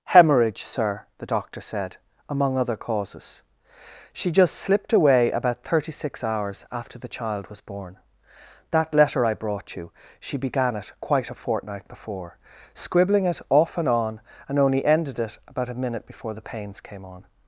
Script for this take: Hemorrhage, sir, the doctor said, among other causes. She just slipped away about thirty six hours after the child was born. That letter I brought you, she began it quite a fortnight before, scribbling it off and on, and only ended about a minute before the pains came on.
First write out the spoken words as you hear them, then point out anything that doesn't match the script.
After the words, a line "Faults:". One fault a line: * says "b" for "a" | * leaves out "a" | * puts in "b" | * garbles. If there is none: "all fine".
Hemorrhage, sir, the doctor said, among other causes. She just slipped away about thirty six hours after the child was born. That letter I brought you, she began it quite a fortnight before, scribbling it off and on, and only ended it about a minute before the pains came on.
Faults:
* puts in "it"